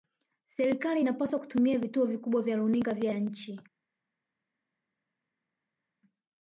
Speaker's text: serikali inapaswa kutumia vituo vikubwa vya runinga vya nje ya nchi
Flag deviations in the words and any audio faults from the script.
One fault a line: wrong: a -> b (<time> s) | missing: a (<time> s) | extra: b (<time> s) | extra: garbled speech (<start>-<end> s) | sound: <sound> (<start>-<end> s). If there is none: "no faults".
missing: nje (3.1 s)